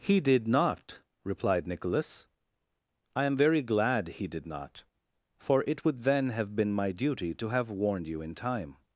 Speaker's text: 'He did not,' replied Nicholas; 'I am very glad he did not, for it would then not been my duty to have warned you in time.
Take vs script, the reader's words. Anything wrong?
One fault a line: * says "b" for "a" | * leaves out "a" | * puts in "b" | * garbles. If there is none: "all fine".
* says "have" for "not"